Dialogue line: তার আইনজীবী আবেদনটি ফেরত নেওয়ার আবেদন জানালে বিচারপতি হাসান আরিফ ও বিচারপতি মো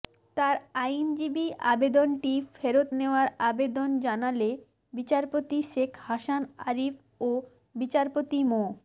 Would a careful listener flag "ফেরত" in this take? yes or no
no